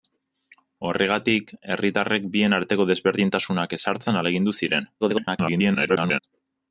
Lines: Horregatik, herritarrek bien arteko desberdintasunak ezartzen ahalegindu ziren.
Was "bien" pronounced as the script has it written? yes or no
yes